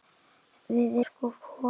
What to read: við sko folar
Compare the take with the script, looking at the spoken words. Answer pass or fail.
pass